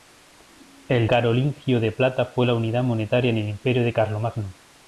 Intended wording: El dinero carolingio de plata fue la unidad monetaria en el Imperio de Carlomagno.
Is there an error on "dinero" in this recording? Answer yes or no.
yes